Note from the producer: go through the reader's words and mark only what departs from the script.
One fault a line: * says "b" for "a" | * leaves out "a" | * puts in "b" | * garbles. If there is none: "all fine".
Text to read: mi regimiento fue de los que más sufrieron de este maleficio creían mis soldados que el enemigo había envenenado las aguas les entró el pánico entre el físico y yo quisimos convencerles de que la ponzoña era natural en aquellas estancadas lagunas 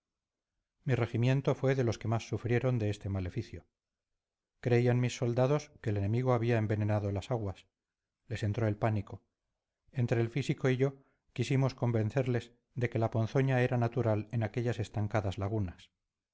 all fine